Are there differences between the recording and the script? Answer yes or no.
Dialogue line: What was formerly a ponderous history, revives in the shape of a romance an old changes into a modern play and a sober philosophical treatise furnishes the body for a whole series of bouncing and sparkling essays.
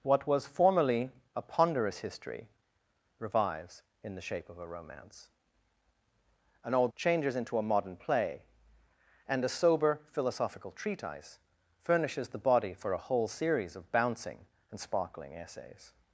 no